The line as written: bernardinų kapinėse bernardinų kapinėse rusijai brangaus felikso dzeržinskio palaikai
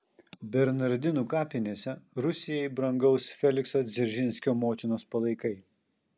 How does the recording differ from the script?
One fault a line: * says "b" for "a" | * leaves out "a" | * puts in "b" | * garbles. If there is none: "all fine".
* leaves out "bernardinų kapinėse"
* puts in "motinos"